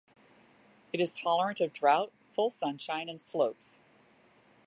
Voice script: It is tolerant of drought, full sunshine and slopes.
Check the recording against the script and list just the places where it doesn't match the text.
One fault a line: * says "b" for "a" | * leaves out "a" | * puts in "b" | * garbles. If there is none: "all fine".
all fine